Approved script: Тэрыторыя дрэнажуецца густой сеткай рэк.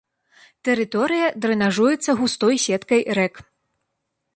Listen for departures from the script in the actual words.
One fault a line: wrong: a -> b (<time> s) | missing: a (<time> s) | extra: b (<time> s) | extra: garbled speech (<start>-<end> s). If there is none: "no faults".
no faults